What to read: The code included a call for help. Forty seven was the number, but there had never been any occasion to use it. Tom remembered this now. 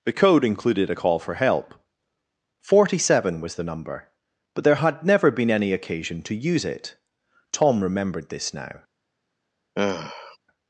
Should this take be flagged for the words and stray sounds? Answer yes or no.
yes